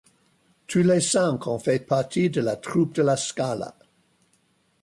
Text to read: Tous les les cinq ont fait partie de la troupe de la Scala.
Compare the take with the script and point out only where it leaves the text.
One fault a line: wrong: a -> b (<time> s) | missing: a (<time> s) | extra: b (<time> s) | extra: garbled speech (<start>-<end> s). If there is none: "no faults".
missing: les (1.0 s)